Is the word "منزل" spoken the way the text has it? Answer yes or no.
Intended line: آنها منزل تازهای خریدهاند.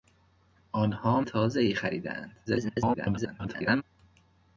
no